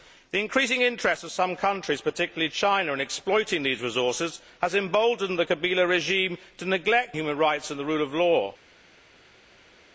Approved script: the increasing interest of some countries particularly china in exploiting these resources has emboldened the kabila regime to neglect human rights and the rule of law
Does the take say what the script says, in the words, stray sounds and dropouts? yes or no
yes